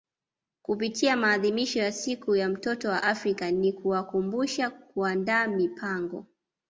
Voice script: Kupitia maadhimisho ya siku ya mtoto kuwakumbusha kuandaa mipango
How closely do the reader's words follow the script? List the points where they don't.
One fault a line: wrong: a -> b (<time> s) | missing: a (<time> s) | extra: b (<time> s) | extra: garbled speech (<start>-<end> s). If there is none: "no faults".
extra: wa Afrika ni (2.9 s)